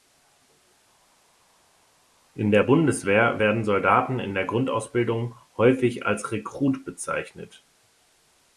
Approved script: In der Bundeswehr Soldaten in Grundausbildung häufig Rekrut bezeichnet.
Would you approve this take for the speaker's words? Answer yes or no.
no